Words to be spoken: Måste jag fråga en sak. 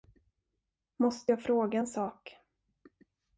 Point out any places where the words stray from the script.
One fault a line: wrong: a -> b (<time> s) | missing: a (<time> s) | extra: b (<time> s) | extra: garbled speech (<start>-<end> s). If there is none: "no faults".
no faults